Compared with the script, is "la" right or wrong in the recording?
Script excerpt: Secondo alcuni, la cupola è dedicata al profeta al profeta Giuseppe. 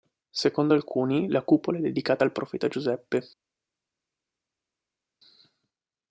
right